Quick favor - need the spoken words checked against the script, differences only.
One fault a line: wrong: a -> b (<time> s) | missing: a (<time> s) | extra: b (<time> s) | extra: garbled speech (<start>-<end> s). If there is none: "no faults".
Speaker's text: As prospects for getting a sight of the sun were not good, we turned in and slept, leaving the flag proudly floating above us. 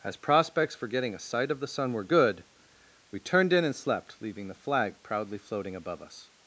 missing: not (2.0 s)